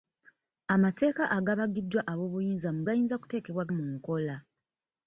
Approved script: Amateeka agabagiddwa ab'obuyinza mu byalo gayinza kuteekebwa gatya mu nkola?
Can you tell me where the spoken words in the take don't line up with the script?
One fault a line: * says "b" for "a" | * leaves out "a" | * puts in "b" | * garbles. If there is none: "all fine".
* leaves out "byalo"
* leaves out "gatya"